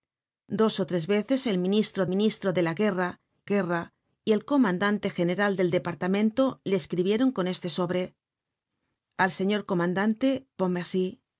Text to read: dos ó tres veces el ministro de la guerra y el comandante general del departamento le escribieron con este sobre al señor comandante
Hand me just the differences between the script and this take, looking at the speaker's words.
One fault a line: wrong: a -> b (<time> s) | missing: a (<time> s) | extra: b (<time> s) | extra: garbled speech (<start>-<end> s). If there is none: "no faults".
extra: ministro (2.0 s)
extra: guerra (3.4 s)